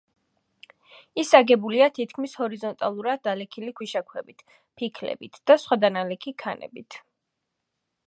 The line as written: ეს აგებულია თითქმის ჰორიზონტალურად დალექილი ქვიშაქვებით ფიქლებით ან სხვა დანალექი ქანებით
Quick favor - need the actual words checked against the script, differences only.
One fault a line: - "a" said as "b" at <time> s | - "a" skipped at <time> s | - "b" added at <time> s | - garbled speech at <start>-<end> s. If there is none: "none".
- "ეს" said as "ის" at 1.2 s
- "ან" said as "და" at 5.5 s